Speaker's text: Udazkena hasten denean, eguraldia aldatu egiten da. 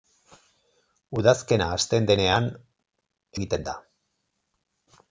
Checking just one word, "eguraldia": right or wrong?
wrong